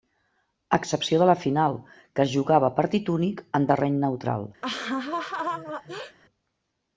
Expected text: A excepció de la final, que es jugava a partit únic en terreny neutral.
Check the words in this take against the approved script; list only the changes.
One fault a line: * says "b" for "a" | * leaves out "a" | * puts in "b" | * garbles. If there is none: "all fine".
all fine